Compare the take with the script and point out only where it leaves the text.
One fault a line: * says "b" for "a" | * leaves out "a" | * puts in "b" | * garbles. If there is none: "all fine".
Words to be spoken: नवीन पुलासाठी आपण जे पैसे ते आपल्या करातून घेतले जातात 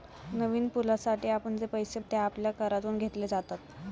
all fine